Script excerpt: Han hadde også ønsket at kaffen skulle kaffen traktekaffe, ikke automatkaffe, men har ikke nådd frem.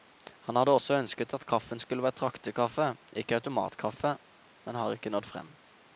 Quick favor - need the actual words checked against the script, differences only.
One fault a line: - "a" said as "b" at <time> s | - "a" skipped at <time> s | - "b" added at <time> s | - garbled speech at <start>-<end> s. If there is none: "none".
- "kaffen" said as "være" at 2.0 s